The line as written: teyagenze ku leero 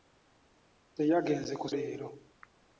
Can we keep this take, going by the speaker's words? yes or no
yes